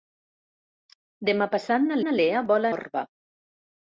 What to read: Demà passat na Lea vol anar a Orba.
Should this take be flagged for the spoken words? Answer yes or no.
yes